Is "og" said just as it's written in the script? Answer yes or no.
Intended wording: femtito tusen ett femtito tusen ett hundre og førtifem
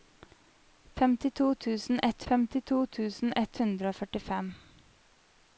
yes